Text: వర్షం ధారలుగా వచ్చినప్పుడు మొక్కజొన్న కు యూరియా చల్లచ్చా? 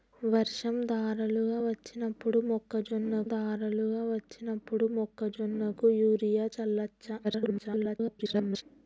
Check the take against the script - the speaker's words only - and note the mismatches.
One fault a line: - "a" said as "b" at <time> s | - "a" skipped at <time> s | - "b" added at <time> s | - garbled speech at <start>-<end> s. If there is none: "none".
- "ధారలుగా వచ్చినప్పుడు మొక్కజొన్న" added at 3.3 s
- garbled speech at 7.2-8.6 s